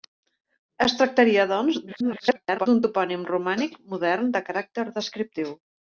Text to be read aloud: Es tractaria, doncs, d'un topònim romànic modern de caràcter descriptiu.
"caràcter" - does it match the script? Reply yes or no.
yes